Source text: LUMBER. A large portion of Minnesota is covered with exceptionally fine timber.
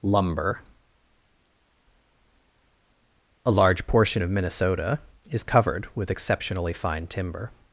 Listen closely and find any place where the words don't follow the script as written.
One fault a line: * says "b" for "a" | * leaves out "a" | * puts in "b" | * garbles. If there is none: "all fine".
all fine